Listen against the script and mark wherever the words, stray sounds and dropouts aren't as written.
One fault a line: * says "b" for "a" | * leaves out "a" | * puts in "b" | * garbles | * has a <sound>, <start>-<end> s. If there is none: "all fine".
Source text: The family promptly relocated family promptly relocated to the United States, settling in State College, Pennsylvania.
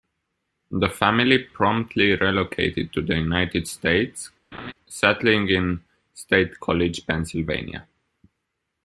* leaves out "family promptly relocated"
* has a laugh, 4.5-4.7 s